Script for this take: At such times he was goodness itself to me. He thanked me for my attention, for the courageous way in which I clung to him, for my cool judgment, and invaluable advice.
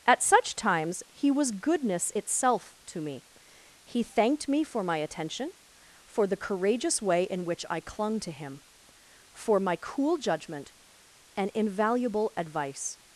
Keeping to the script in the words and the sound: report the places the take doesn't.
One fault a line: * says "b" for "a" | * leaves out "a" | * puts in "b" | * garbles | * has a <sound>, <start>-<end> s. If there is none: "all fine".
all fine